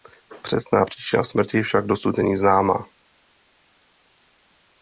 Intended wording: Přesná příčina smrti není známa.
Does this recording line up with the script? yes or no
no